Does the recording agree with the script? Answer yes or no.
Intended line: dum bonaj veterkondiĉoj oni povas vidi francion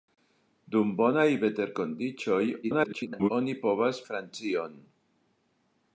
no